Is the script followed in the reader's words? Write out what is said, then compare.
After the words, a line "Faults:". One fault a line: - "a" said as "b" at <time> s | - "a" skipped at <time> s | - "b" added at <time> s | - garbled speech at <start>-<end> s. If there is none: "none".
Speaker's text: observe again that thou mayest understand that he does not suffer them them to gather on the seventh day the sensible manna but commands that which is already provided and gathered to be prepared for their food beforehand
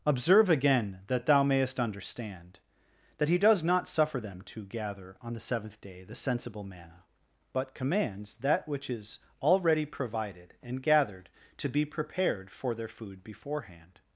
observe again that thou mayest understand that he does not suffer them to gather on the seventh day the sensible manna but commands that which is already provided and gathered to be prepared for their food beforehand
Faults:
- "them" skipped at 4.4 s